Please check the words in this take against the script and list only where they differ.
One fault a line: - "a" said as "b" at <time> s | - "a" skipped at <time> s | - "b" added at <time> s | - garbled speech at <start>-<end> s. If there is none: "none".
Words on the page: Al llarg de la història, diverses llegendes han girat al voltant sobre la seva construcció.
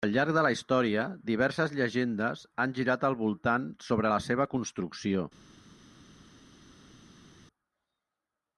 none